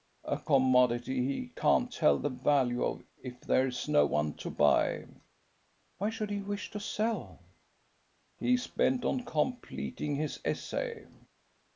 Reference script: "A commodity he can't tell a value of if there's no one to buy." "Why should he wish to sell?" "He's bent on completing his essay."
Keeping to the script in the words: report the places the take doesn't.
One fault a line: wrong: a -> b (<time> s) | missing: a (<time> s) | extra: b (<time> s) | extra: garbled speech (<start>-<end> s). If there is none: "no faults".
wrong: a -> the (2.2 s)